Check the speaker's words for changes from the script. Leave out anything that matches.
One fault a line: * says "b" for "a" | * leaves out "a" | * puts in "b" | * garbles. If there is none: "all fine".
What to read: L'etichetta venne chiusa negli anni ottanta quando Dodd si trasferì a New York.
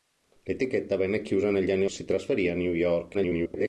* leaves out "ottanta quando Dodd"
* garbles